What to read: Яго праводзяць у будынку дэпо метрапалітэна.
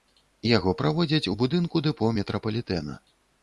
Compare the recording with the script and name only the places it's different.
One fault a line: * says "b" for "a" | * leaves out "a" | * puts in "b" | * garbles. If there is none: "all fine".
all fine